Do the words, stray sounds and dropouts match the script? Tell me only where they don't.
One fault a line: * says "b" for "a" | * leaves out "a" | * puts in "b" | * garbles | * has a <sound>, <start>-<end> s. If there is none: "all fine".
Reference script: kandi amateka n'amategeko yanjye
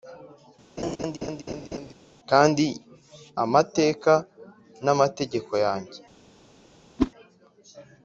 * has a laugh, 0.8-1.9 s
* has a whoosh, 7.0-7.1 s